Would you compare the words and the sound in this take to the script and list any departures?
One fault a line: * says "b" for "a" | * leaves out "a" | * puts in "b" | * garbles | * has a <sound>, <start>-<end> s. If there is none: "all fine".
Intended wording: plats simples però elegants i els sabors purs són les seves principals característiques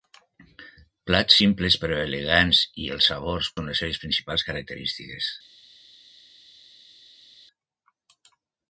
* leaves out "purs"